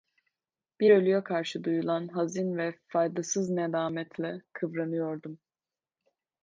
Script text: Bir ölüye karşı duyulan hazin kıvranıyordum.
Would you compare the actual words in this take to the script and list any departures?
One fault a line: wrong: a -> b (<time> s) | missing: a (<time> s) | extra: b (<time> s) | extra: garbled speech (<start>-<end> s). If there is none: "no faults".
extra: ve faydasız nedametle (2.6 s)